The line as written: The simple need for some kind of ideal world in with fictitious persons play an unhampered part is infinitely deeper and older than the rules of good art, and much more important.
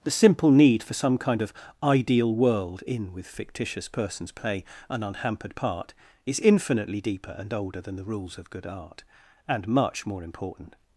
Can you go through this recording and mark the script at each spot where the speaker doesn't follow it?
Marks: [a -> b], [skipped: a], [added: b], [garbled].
The simple need for some kind of ideal world in with fictitious persons play an unhampered part is infinitely deeper and older than the rules of good art, and much more important.